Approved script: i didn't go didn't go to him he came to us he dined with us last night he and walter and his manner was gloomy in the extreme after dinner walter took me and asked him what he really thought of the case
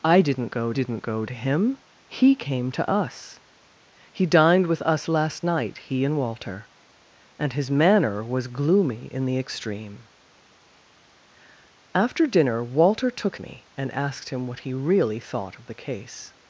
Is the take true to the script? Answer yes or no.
yes